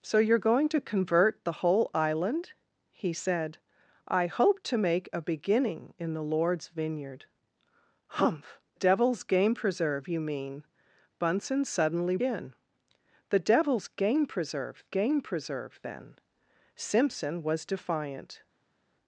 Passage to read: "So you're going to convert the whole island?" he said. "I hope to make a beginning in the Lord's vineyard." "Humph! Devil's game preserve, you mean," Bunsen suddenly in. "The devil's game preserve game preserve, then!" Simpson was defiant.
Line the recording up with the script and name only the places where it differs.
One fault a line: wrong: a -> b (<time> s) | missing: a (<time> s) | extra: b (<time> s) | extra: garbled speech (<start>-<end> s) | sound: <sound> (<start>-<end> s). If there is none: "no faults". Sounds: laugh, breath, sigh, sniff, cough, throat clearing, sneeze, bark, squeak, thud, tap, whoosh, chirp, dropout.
no faults